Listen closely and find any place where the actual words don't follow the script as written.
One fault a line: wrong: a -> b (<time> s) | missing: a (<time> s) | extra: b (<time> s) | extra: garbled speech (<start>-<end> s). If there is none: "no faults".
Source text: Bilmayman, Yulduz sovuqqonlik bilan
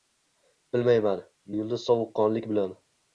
no faults